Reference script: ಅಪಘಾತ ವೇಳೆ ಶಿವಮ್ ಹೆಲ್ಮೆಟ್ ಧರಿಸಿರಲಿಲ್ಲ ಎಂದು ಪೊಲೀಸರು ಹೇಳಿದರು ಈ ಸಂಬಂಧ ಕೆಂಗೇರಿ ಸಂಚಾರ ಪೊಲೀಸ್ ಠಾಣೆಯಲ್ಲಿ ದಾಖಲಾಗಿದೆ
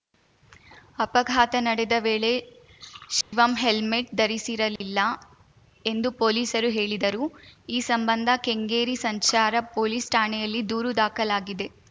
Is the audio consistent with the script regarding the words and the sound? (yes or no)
no